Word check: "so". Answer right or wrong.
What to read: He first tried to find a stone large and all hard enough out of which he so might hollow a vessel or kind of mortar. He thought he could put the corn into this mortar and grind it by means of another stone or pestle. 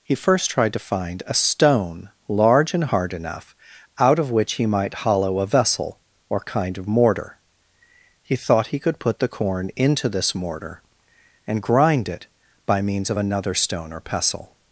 wrong